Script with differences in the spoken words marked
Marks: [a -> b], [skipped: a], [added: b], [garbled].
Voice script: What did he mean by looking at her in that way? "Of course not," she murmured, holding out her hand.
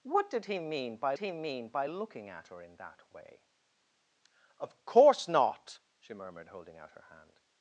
What did he mean by [added: he mean by] looking at her in that way? "Of course not," she murmured, holding out her hand.